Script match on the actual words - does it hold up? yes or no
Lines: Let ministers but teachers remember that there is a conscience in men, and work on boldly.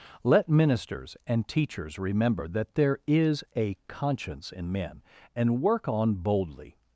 no